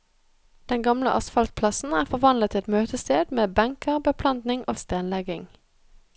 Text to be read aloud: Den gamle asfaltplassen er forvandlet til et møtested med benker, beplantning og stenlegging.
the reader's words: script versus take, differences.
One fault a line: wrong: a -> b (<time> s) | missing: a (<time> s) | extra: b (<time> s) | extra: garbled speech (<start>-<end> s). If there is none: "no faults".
no faults